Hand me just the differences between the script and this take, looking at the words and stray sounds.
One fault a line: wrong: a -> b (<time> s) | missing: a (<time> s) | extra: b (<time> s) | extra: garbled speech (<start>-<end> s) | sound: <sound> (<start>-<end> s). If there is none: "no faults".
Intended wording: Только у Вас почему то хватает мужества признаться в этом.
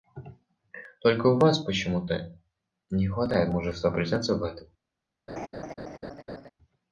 extra: не (2.9 s)
sound: laugh (5.3-6.5 s)